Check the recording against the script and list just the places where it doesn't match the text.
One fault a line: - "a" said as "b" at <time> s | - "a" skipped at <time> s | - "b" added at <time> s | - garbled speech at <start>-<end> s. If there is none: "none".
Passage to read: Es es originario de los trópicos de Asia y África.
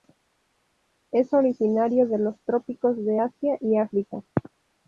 - "es" skipped at 1.3 s